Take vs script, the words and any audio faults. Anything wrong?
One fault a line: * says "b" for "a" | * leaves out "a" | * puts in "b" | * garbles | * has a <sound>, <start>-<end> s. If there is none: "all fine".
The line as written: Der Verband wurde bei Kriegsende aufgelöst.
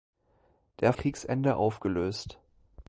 * leaves out "Verband wurde bei"